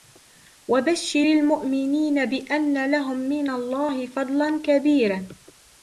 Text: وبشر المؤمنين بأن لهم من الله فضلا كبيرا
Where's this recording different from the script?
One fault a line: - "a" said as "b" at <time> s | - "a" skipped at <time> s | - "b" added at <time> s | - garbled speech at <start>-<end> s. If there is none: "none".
none